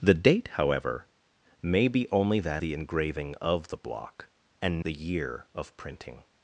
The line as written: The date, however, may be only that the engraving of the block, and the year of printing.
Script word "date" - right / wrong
right